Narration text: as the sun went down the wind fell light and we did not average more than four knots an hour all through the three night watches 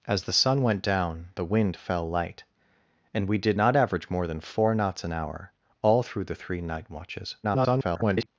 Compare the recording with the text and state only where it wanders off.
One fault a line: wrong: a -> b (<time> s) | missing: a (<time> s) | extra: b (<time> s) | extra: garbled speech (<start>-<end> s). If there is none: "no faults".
extra: garbled speech (7.4-8.3 s)